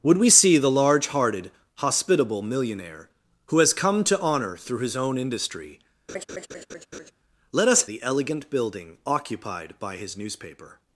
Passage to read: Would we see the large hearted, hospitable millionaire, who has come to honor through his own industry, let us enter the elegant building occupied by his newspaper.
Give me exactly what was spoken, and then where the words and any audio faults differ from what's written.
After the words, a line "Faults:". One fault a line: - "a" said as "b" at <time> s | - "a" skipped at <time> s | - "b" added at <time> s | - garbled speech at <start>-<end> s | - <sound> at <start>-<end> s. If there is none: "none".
Would we see the large hearted, hospitable millionaire, who has come to honor through his own industry, let us the elegant building occupied by his newspaper.
Faults:
- laugh at 6.1-7.1 s
- "enter" skipped at 7.9 s